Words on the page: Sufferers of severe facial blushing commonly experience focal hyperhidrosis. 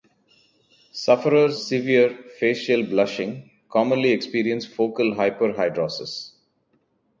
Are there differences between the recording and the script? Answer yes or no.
yes